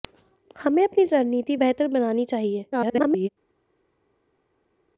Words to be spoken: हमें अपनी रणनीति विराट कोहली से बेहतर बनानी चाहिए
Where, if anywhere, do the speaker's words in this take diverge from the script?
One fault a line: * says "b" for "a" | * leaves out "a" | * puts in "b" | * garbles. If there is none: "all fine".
* leaves out "विराट कोहली से"
* garbles